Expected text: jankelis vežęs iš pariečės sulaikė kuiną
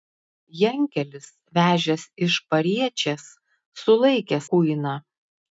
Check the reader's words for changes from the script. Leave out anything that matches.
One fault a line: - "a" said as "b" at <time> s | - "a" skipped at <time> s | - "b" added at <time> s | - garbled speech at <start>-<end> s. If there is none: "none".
none